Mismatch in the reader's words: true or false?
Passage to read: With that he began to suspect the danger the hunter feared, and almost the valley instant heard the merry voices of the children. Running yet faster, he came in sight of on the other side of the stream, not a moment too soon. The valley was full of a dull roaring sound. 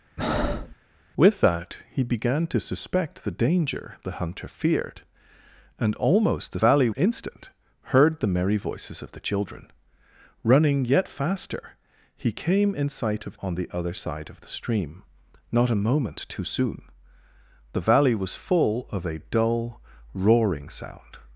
false